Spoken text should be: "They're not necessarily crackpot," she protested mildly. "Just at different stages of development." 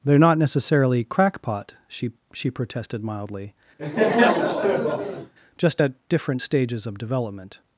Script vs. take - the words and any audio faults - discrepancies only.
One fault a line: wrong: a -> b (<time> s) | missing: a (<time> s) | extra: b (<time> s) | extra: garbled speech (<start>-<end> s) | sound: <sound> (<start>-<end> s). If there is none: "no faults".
extra: she (2.3 s)
sound: laugh (3.8-5.3 s)